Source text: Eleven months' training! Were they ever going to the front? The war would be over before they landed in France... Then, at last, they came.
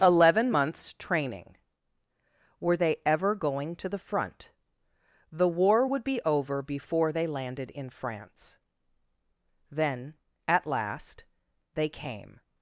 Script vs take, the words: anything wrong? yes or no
no